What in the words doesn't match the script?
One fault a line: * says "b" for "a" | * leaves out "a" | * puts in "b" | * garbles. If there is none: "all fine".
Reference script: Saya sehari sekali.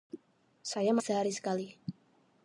all fine